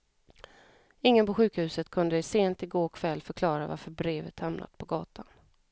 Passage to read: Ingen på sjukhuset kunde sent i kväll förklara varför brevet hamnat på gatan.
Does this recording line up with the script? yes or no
no